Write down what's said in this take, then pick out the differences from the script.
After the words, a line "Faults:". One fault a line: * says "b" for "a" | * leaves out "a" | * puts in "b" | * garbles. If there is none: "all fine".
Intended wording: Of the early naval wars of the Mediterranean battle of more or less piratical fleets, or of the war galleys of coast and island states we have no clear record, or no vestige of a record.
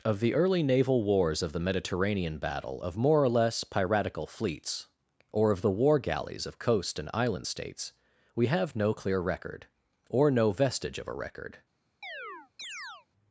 Of the early naval wars of the Mediterranean battle of more or less piratical fleets, or of the war galleys of coast and island states we have no clear record, or no vestige of a record.
Faults:
all fine